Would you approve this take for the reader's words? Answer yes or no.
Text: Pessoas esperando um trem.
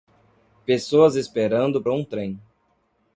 yes